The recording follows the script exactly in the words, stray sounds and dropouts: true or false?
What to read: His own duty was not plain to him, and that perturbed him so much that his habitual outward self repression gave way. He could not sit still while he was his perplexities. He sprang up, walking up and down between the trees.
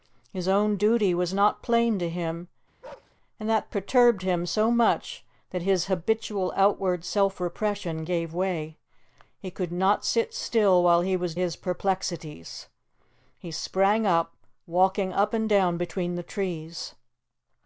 false